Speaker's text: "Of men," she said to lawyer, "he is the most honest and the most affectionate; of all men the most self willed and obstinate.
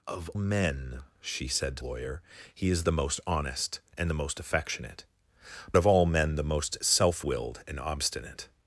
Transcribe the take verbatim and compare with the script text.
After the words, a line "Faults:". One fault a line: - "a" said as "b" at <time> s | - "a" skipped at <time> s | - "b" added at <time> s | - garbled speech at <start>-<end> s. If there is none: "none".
"Of men," she said to lawyer, "he is the most honest and the most affectionate; of all men the most self willed and obstinate.
Faults:
none